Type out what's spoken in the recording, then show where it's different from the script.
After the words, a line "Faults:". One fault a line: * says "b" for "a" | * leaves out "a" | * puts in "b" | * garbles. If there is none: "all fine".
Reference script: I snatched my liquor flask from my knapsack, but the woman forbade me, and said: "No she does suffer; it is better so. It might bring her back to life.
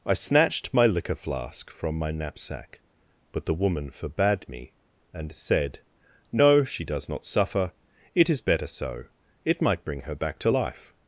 I snatched my liquor flask from my knapsack, but the woman forbade me, and said: "No she does not suffer; it is better so. It might bring her back to life.
Faults:
* puts in "not"